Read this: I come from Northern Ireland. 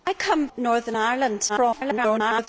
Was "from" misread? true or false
true